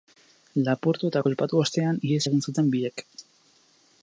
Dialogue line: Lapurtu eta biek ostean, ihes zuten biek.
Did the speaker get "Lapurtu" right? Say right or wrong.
right